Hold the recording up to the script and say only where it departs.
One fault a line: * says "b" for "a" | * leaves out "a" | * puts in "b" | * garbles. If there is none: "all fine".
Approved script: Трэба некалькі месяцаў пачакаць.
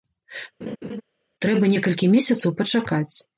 all fine